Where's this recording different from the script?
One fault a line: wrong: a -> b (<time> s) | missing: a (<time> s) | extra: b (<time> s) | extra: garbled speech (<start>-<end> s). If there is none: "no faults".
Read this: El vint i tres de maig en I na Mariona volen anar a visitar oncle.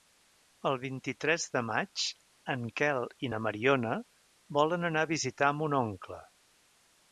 extra: Quel (2.8 s)
extra: mon (5.6 s)